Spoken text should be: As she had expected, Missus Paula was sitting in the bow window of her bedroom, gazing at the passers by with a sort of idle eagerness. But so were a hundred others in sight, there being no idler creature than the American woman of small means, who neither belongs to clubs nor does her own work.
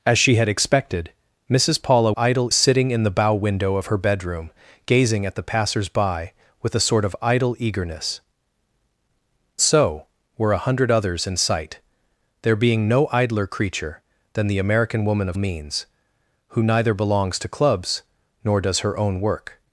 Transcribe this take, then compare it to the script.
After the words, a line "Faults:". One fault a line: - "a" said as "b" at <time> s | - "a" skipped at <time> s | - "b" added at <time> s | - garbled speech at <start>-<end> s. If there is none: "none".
As she had expected, Missus Paula idle sitting in the bow window of her bedroom, gazing at the passers by with a sort of idle eagerness. So were a hundred others in sight, there being no idler creature than the American woman of means, who neither belongs to clubs nor does her own work.
Faults:
- "was" said as "idle" at 2.2 s
- "But" skipped at 8.2 s
- "small" skipped at 15.4 s